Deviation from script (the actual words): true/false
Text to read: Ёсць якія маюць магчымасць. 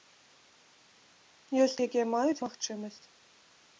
false